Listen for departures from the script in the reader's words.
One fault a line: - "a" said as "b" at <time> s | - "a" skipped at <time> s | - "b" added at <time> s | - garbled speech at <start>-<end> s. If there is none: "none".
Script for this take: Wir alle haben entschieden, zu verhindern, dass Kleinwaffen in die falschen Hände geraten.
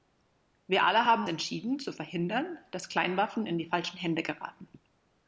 none